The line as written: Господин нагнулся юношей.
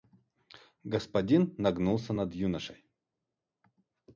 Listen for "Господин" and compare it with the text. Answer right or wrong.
right